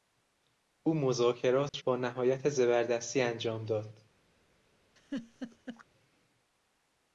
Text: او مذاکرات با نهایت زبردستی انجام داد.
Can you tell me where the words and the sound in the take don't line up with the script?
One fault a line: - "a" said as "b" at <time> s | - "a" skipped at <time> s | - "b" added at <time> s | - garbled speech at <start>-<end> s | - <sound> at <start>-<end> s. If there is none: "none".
- dropout at 1.7-1.7 s
- laugh at 5.0-5.8 s